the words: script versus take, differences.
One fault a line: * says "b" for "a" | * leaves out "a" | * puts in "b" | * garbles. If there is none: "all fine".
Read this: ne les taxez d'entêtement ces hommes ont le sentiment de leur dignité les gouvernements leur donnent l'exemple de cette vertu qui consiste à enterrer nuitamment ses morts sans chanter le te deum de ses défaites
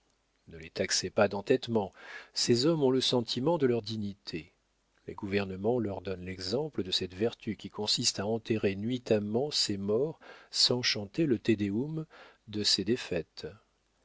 * puts in "pas"